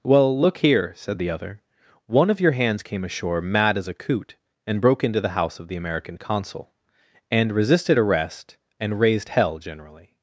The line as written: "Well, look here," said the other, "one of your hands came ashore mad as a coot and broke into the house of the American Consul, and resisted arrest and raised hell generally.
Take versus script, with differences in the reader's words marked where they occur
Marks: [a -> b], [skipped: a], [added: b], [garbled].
"Well, look here," said the other, "one of your hands came ashore mad as a coot and broke into the house of the American Consul, and resisted arrest and raised hell generally.